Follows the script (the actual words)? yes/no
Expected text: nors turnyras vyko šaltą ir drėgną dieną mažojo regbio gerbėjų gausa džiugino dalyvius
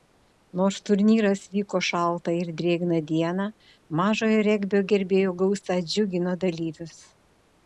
yes